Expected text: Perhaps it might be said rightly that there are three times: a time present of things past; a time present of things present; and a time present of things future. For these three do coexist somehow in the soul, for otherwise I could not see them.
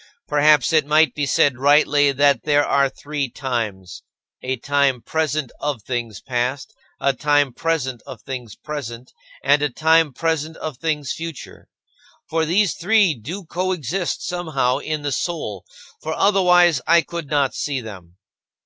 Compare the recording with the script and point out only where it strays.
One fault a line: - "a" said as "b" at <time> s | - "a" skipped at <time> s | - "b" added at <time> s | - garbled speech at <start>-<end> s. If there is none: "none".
none